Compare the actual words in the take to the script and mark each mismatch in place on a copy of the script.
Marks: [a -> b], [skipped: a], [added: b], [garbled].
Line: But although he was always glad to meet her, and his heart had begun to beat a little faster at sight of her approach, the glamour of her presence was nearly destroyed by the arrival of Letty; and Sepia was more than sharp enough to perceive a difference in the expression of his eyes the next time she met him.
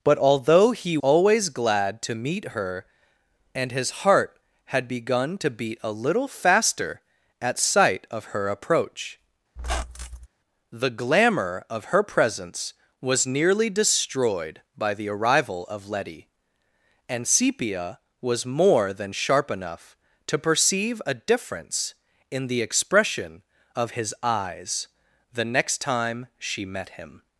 But although he [skipped: was] always glad to meet her, and his heart had begun to beat a little faster at sight of her approach, the glamour of her presence was nearly destroyed by the arrival of Letty; and Sepia was more than sharp enough to perceive a difference in the expression of his eyes the next time she met him.